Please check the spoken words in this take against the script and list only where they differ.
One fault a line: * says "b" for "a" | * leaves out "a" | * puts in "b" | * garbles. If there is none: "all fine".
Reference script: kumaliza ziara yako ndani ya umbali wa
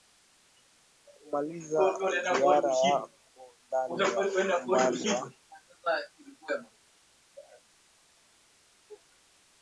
all fine